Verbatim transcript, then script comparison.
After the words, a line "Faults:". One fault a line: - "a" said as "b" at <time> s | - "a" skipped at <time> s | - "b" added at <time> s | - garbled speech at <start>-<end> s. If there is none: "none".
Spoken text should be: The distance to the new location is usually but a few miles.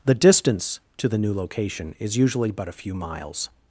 The distance to the new location is usually but a few miles.
Faults:
none